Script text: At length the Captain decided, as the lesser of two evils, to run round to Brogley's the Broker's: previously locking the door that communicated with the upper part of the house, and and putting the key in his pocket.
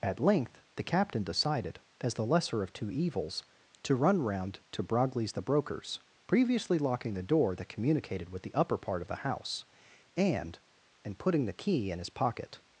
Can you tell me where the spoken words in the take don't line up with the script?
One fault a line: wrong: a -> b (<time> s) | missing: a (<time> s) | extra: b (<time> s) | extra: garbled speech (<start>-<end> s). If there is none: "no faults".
no faults